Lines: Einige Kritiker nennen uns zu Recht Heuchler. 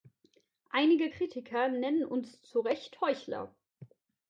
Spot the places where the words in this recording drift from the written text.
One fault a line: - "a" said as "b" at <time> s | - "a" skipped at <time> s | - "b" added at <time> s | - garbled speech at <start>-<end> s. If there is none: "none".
none